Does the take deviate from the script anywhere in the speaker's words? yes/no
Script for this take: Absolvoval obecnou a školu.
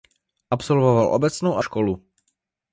no